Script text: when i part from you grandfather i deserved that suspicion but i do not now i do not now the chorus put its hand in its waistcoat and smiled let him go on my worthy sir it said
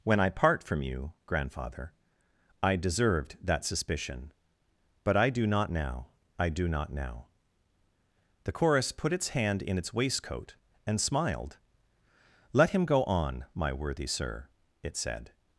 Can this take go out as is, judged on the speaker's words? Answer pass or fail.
pass